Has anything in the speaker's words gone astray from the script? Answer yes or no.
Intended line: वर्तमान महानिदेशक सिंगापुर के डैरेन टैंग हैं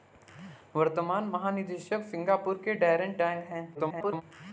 yes